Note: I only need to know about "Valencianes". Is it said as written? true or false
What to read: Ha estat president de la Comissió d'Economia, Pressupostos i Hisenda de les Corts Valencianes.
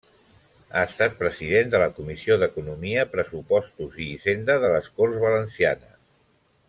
true